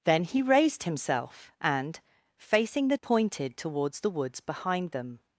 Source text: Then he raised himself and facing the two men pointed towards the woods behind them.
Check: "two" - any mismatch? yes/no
yes